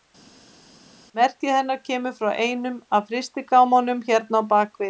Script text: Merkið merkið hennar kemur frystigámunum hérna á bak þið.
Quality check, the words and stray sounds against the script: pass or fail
fail